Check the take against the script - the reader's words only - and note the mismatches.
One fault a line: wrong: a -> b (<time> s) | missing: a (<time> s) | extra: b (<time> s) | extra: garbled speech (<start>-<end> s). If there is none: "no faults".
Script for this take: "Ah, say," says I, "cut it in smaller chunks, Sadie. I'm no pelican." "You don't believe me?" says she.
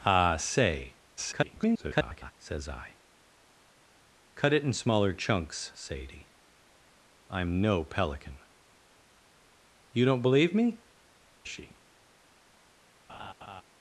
extra: garbled speech (1.2-2.3 s)
missing: says (10.8 s)